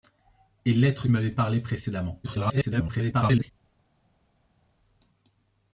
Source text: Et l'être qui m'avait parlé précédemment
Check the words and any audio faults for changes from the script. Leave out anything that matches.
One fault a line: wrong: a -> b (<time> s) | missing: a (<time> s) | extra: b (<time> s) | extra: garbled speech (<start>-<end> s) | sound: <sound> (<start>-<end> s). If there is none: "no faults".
missing: qui (1.1 s)
extra: garbled speech (2.2-3.5 s)